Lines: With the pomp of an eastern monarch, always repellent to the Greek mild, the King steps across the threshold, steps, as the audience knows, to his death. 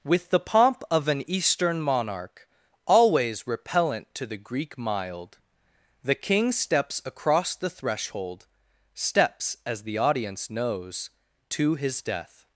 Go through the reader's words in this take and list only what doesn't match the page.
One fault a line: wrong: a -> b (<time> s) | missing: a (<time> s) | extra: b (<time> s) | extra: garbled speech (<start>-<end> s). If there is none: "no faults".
no faults